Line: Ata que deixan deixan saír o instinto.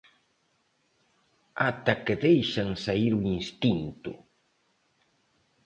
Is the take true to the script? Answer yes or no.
no